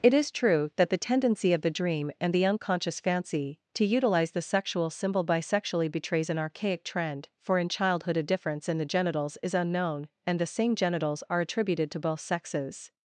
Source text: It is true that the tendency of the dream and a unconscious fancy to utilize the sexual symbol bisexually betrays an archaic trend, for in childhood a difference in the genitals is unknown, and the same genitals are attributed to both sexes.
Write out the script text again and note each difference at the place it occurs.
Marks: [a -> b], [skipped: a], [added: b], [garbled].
It is true that the tendency of the dream and [a -> the] unconscious fancy to utilize the sexual symbol bisexually betrays an archaic trend, for in childhood a difference in the genitals is unknown, and the same genitals are attributed to both sexes.